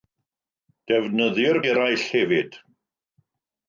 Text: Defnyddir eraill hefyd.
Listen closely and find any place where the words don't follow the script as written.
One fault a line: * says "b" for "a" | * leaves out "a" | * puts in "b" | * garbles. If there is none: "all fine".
all fine